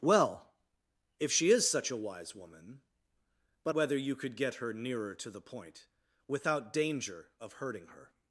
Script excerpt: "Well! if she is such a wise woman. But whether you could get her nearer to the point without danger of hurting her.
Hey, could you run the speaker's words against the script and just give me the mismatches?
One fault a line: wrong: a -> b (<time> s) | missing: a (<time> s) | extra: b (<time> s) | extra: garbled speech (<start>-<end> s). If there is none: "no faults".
no faults